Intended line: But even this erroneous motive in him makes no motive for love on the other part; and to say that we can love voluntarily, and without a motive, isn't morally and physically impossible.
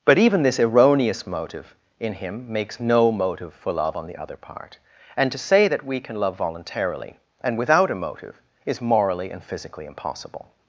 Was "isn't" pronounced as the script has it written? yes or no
no